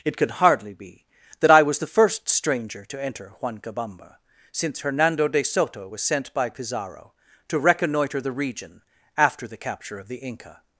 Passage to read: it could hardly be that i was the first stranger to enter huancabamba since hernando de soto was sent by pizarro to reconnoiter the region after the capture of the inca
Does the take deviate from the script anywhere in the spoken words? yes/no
no